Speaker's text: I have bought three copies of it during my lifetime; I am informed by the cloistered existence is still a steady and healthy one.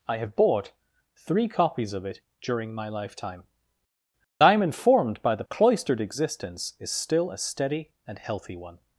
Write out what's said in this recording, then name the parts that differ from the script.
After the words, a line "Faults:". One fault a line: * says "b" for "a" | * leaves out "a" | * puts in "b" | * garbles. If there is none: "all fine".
I have bought three copies of it during my lifetime; I am informed by the cloistered existence is still a steady and healthy one.
Faults:
all fine